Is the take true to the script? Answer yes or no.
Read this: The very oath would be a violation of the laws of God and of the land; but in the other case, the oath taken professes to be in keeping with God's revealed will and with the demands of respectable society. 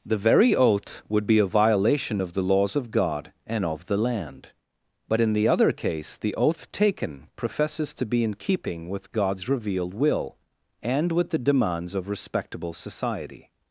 yes